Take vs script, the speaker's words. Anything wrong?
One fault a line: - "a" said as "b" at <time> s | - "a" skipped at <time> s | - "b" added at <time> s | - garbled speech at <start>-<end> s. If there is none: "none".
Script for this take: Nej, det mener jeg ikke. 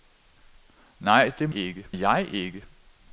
- "mener" said as "ikke" at 1.5 s